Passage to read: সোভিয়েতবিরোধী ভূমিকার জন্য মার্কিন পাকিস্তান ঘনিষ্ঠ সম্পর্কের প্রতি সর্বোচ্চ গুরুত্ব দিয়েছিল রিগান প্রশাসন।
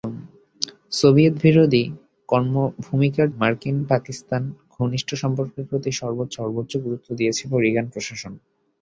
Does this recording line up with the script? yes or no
no